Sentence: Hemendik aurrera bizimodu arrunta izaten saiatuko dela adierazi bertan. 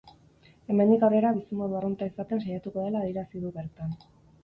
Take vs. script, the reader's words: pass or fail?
fail